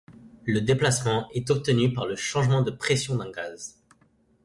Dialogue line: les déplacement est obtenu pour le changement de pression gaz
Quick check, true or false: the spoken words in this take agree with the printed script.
false